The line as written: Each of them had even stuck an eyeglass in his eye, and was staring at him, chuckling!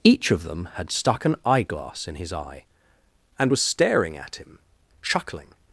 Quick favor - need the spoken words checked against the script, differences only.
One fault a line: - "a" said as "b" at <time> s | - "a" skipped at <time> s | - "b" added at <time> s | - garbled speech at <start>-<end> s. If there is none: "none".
- "even" skipped at 0.9 s